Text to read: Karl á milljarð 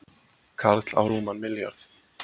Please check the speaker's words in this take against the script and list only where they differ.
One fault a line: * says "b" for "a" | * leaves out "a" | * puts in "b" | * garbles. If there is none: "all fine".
* puts in "rúman"